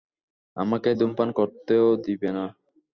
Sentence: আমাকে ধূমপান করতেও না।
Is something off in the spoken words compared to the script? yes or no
yes